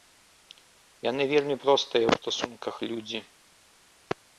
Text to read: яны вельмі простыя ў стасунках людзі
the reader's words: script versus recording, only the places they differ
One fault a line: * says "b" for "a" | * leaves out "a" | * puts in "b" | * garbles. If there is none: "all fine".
all fine